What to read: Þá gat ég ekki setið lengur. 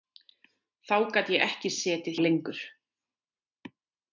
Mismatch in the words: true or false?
false